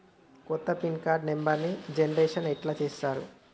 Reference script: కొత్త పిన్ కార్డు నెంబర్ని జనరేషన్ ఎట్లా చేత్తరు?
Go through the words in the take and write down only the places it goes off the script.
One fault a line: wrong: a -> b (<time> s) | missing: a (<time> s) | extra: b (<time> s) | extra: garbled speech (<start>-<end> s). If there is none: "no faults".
no faults